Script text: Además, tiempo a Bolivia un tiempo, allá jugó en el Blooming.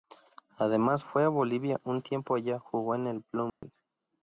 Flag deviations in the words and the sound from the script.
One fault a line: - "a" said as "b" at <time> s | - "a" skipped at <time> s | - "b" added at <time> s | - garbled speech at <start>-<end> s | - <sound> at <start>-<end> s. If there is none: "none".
- "tiempo" said as "fue" at 1.0 s
- dropout at 3.5-3.6 s